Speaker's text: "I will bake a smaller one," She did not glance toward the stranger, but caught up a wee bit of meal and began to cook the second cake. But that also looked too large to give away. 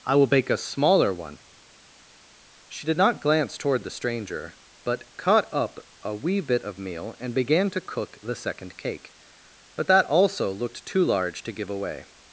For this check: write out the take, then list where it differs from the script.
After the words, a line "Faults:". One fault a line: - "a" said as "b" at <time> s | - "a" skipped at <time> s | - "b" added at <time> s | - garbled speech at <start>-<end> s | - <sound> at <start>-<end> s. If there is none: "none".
"I will bake a smaller one," She did not glance toward the stranger, but caught up a wee bit of meal and began to cook the second cake. But that also looked too large to give away.
Faults:
none